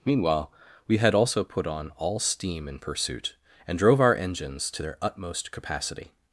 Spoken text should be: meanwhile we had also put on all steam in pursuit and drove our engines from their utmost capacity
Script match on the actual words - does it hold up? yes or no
no